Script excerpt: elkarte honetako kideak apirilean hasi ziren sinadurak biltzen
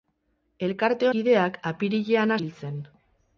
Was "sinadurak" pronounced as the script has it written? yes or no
no